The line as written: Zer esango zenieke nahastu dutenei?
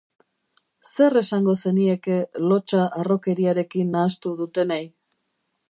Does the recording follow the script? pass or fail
fail